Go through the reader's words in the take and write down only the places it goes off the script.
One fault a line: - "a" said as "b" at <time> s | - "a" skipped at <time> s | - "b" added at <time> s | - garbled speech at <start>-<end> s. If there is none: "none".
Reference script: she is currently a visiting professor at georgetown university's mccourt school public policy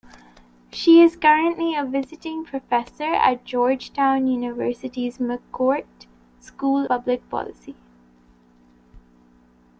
none